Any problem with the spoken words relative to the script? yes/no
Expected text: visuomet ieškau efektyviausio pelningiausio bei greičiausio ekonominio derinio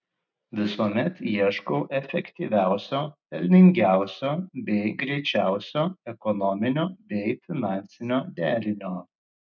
yes